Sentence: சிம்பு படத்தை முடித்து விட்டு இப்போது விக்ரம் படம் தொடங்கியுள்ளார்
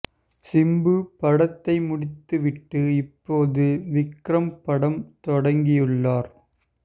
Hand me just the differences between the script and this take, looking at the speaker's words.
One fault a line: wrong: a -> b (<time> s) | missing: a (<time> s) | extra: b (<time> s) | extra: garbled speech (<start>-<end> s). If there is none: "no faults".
no faults